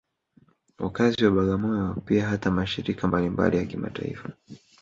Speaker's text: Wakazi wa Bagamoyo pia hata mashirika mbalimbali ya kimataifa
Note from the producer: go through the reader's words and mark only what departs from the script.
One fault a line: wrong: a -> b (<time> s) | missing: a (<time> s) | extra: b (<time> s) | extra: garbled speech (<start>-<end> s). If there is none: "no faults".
no faults